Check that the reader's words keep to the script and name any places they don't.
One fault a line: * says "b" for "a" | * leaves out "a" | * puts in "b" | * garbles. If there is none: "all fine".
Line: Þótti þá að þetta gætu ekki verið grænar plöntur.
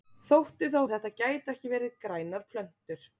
all fine